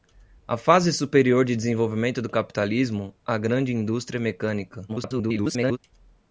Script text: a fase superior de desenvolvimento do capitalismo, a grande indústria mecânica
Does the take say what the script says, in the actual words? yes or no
no